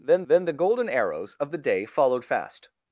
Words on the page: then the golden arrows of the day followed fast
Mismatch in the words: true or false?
true